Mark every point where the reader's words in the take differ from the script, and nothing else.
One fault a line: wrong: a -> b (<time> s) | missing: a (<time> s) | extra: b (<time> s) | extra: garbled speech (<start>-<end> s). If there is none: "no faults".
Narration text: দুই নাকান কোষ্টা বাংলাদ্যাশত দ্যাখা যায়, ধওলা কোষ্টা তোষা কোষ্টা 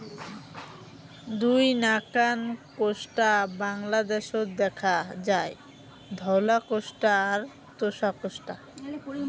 extra: আর (7.3 s)